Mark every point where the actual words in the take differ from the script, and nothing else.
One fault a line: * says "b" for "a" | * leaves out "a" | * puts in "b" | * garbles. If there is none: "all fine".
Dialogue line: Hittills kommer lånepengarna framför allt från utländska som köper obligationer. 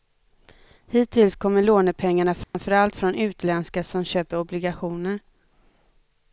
all fine